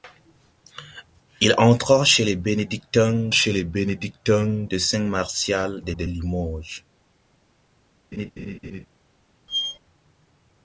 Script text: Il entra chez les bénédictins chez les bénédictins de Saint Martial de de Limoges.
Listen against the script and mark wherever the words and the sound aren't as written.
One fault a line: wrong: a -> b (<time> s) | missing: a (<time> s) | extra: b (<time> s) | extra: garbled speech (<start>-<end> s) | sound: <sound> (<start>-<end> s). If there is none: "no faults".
sound: laugh (8.1-8.9 s)
sound: squeak (9.5-9.8 s)